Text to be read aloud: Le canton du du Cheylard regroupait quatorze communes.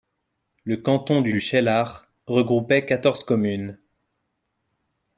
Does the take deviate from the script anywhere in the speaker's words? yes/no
no